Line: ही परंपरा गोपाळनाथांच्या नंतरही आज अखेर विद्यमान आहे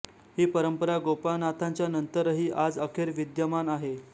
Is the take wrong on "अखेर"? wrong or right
right